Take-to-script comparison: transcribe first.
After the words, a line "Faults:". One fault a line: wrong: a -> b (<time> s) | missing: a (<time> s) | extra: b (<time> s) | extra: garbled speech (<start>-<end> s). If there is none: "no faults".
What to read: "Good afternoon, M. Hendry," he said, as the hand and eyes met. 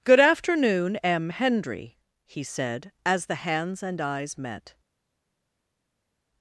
"Good afternoon, M. Hendry," he said, as the hands and eyes met.
Faults:
wrong: hand -> hands (3.4 s)